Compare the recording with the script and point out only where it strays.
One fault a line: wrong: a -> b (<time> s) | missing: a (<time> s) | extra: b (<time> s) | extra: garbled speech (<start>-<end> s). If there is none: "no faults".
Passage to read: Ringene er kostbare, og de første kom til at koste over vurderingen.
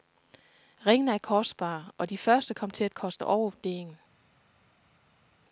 no faults